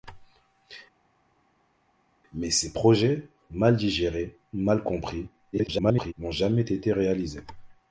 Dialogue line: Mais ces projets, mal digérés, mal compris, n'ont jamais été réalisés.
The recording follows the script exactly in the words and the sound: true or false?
false